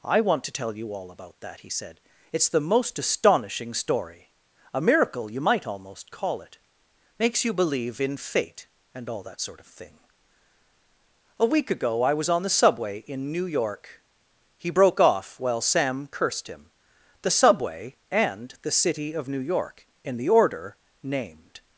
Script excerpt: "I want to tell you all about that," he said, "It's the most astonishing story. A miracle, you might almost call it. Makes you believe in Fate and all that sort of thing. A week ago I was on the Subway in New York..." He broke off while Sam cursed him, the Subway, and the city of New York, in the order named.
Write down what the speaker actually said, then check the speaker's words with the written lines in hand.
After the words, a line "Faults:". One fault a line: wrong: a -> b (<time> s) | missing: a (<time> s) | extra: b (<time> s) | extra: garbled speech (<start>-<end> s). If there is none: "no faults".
"I want to tell you all about that," he said, "It's the most astonishing story. A miracle, you might almost call it. Makes you believe in Fate and all that sort of thing. A week ago I was on the Subway in New York..." He broke off while Sam cursed him, the Subway, and the city of New York, in the order named.
Faults:
no faults